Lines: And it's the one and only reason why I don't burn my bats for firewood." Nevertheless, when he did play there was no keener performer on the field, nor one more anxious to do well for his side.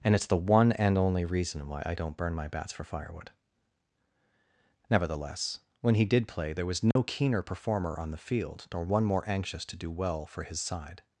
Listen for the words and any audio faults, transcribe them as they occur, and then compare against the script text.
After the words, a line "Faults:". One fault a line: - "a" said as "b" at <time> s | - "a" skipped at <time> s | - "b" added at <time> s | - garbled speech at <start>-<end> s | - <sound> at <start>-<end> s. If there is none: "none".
And it's the one and only reason why I don't burn my bats for firewood." Nevertheless, when he did play there was no keener performer on the field, nor one more anxious to do well for his side.
Faults:
- dropout at 6.9-7.0 s